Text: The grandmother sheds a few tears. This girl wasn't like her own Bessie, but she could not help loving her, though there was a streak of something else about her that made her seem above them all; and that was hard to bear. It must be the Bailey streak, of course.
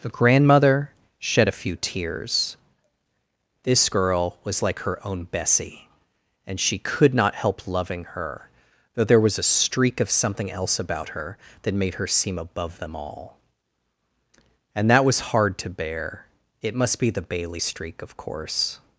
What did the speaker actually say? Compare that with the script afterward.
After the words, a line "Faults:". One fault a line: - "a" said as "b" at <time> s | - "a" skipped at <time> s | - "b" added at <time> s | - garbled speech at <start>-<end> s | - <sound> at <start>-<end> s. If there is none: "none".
The grandmother shed a few tears. This girl was like her own Bessie, and she could not help loving her, though there was a streak of something else about her that made her seem above them all; and that was hard to bear. It must be the Bailey streak, of course.
Faults:
- "sheds" said as "shed" at 1.2 s
- "wasn't" said as "was" at 4.4 s
- "but" said as "and" at 6.4 s